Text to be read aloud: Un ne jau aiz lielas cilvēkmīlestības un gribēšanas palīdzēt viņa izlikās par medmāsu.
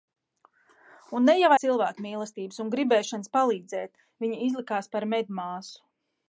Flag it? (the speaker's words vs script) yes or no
yes